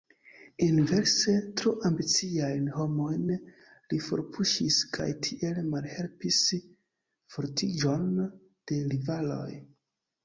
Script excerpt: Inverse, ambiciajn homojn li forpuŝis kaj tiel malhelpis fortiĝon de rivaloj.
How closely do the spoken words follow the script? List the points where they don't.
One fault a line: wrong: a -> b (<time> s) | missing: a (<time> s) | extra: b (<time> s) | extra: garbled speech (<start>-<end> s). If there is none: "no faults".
extra: tro (1.6 s)